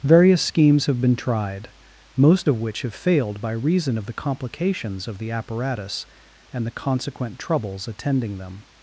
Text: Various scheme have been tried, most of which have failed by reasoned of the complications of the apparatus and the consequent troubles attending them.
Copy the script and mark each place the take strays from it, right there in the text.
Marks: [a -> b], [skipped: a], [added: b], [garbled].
Various [scheme -> schemes] have been tried, most of which have failed by [reasoned -> reason] of the complications of the apparatus and the consequent troubles attending them.